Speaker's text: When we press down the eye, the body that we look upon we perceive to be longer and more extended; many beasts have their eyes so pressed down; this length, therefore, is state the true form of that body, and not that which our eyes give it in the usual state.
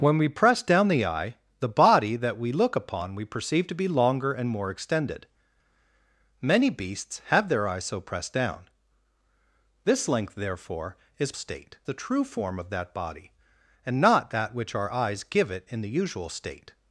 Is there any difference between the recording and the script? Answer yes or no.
no